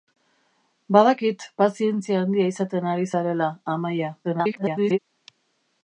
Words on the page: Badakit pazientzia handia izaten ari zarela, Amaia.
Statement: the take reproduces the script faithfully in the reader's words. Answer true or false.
false